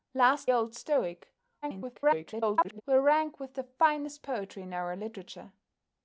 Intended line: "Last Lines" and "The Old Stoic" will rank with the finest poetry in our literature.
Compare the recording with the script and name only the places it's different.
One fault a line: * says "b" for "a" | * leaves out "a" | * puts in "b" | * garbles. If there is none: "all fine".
* leaves out "Lines and The"
* garbles